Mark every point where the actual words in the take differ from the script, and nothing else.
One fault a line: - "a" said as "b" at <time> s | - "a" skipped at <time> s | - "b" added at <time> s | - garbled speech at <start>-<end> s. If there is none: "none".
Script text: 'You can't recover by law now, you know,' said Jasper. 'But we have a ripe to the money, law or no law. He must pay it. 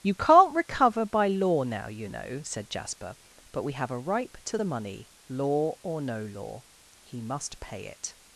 none